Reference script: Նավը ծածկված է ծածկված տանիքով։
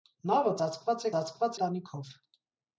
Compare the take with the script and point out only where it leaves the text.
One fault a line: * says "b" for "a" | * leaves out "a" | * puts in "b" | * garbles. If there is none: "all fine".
all fine